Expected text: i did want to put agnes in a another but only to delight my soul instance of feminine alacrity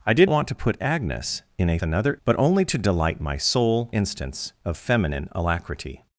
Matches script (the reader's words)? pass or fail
pass